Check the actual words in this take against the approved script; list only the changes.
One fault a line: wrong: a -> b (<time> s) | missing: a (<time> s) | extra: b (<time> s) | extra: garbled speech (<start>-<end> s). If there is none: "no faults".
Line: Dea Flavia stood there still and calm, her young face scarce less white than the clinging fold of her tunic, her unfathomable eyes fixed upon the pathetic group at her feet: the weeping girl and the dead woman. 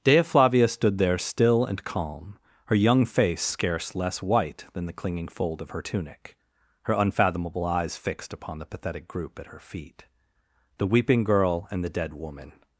no faults